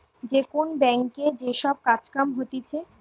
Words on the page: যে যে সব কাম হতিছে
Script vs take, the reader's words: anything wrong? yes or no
yes